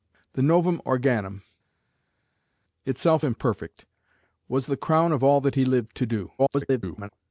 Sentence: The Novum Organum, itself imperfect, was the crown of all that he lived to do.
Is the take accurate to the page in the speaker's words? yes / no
no